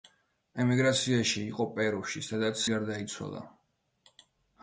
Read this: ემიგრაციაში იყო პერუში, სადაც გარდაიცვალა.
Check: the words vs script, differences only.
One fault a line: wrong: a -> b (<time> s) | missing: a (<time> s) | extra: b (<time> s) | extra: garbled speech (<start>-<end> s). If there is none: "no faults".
no faults